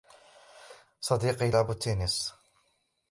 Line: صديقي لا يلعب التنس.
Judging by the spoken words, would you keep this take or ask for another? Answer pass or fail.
fail